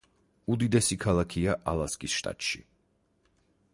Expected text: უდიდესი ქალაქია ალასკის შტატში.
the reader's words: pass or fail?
pass